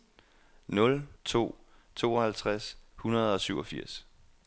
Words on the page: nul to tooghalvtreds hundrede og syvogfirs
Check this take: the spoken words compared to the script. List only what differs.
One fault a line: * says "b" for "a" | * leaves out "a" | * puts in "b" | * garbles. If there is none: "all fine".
all fine